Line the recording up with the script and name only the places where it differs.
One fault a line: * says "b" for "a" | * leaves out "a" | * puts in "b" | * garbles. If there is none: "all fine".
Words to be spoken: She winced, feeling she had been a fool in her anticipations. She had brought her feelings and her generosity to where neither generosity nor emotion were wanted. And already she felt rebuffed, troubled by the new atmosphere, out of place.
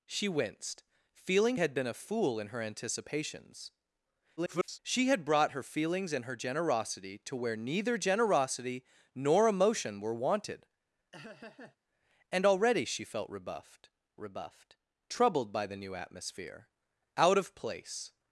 * leaves out "she"
* garbles
* puts in "rebuffed"